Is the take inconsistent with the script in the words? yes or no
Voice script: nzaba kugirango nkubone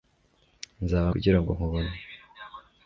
no